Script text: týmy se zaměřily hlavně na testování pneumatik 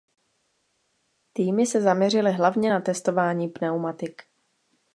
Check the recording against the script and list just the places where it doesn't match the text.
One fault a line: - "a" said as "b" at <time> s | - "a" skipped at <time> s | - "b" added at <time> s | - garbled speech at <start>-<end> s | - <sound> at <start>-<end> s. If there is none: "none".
none